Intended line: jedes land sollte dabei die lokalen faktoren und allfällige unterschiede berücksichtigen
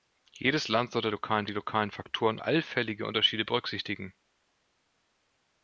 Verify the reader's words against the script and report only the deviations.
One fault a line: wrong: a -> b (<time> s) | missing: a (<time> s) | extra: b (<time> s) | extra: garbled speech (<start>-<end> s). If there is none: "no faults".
wrong: dabei -> lokalen (1.1 s)
missing: und (2.4 s)